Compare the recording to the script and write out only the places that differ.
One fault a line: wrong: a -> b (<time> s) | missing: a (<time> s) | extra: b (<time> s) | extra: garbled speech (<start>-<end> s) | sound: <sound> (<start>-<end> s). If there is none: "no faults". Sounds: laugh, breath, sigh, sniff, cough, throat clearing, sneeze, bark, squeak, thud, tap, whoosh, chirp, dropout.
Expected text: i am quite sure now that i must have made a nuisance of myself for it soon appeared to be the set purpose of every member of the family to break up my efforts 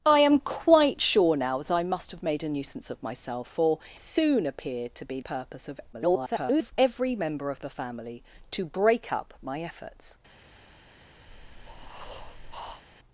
missing: it (3.8 s)
missing: the set (5.2 s)
extra: garbled speech (5.9-6.7 s)
sound: breath (11.3-12.8 s)